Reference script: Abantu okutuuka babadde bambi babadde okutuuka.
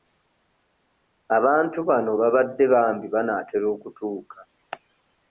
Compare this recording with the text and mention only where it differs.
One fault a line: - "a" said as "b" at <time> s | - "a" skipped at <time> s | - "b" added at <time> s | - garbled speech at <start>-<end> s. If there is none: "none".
- "okutuuka" said as "bano" at 1.9 s
- "babadde" said as "banaatera" at 3.1 s